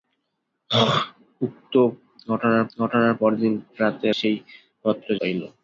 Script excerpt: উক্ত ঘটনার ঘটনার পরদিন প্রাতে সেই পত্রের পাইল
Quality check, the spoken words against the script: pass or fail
pass